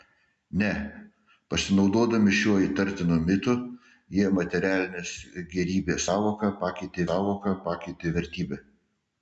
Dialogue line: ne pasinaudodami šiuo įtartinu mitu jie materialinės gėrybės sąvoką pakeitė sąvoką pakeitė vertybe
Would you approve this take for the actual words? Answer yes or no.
yes